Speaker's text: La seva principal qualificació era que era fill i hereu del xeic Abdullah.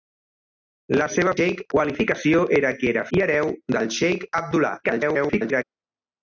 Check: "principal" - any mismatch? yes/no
yes